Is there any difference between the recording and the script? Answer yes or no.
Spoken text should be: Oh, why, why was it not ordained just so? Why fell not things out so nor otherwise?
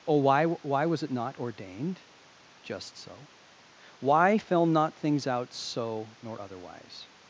no